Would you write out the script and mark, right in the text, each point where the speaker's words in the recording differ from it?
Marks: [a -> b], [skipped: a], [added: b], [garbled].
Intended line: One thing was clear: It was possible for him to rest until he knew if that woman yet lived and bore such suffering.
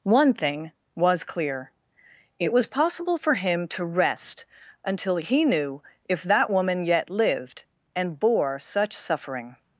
One thing was clear: It was possible for him to rest until he knew if that woman yet lived and bore such suffering.